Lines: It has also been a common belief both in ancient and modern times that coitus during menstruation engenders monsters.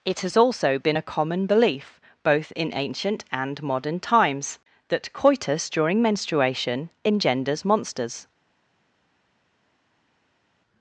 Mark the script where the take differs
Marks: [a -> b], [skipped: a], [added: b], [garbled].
It has also been a common belief both in ancient and modern times that coitus during menstruation engenders monsters.